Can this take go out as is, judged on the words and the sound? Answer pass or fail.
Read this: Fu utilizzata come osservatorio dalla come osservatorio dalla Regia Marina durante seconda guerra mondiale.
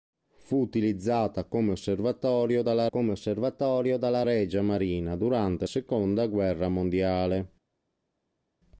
pass